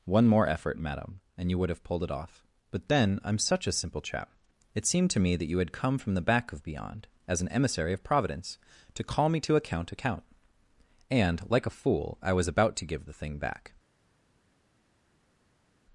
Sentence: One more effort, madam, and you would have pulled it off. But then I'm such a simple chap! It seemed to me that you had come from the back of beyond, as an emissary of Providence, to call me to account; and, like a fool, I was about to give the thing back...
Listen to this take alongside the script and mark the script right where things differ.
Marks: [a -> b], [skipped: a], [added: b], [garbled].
One more effort, madam, and you would have pulled it off. But then I'm such a simple chap! It seemed to me that you had come from the back of beyond, as an emissary of Providence, to call me to account; [added: account] and, like a fool, I was about to give the thing back...